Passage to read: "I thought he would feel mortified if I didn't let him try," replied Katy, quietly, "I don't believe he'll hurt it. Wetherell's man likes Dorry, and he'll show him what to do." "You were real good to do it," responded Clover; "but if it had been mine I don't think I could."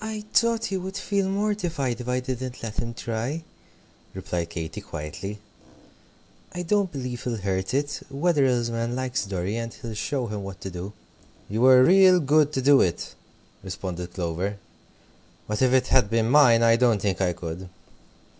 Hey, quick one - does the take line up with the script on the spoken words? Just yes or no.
yes